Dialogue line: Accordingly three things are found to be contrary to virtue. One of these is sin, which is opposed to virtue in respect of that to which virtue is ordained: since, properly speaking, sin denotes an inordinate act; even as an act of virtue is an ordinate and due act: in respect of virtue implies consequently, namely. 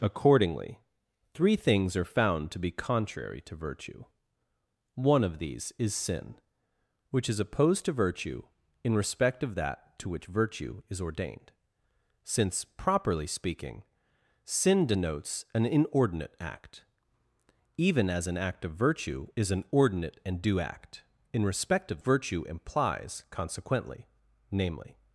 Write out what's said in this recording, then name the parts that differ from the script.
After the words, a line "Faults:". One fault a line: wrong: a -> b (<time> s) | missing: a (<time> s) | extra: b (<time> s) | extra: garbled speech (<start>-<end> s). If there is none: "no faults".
Accordingly three things are found to be contrary to virtue. One of these is sin, which is opposed to virtue in respect of that to which virtue is ordained: since, properly speaking, sin denotes an inordinate act; even as an act of virtue is an ordinate and due act: in respect of virtue implies consequently, namely.
Faults:
no faults